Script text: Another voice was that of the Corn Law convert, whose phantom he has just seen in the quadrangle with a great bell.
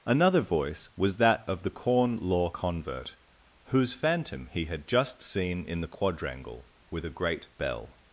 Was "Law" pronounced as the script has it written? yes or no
yes